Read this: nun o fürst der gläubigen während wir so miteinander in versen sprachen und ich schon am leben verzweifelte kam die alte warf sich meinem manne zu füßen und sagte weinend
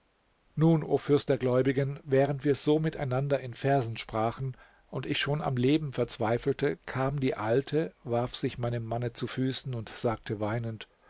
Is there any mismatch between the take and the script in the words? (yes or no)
no